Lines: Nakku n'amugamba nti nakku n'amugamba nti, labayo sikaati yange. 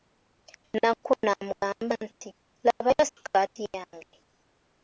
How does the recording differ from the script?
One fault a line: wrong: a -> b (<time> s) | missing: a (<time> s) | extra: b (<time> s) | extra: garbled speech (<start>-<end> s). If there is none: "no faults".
missing: nakku n'amugamba nti (2.3 s)